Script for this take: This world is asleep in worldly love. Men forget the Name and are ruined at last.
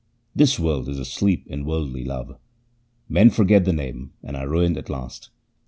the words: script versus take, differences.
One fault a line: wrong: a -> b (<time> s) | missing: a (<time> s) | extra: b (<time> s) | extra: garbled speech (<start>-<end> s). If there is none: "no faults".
no faults